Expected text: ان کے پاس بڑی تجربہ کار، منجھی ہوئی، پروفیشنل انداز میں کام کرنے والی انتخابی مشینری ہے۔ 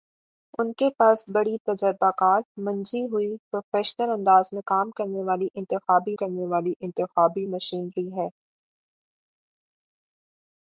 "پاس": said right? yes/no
yes